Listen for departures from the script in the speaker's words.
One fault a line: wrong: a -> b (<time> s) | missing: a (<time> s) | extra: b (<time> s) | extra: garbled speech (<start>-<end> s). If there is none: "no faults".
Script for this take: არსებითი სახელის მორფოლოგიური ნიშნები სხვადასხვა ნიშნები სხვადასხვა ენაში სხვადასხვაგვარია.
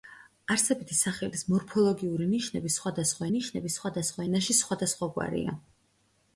no faults